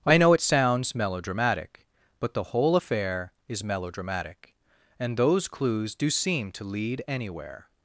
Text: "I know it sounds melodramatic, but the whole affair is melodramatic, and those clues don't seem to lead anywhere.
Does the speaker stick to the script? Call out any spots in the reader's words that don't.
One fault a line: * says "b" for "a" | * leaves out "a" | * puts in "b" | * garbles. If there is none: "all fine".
* says "do" for "don't"